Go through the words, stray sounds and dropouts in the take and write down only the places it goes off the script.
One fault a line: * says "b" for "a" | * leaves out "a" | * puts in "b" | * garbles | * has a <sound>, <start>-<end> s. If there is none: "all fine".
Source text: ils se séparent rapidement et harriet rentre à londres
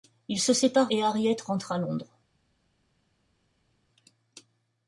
* leaves out "rapidement"